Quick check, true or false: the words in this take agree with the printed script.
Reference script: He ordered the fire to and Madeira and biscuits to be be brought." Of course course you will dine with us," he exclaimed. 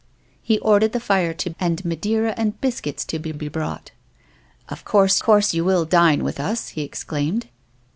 true